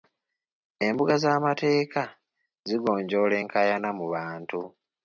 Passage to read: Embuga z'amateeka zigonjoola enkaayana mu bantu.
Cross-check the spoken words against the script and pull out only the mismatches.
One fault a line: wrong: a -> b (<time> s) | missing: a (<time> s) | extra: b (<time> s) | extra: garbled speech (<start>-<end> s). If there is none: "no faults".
no faults